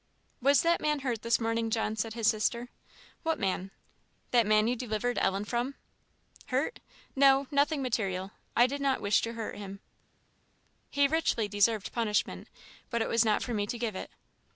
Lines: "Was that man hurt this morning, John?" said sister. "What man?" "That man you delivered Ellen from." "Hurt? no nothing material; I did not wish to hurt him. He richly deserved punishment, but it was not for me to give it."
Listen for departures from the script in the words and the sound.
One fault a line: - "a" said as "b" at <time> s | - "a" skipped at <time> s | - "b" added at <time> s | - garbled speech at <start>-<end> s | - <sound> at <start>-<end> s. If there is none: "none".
- "his" added at 2.1 s